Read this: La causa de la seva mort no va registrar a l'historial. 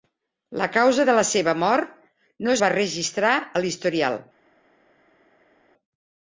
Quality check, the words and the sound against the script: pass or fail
pass